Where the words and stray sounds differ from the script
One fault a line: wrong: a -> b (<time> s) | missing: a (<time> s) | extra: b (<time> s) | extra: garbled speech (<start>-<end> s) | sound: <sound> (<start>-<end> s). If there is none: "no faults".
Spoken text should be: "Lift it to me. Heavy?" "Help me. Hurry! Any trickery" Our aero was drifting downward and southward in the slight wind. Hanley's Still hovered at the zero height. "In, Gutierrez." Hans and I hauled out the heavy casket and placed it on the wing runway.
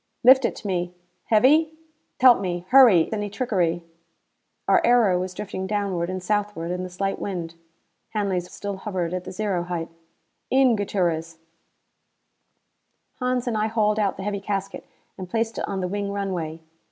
no faults